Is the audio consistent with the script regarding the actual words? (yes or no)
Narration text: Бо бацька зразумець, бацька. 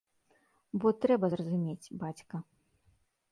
no